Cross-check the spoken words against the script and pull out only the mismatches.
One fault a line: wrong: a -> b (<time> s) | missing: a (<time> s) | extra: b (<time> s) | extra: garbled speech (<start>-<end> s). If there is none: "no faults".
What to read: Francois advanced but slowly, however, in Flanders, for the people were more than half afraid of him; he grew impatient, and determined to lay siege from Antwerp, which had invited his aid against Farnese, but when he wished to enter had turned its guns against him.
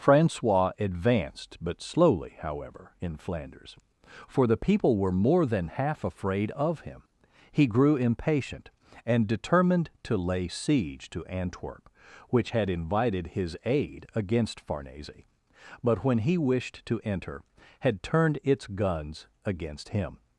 wrong: from -> to (11.1 s)